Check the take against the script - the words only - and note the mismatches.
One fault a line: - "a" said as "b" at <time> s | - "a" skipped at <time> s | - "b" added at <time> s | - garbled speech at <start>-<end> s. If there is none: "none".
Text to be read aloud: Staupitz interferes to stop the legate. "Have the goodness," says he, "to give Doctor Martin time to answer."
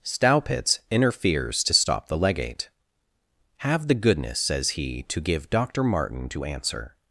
- "time" skipped at 6.3 s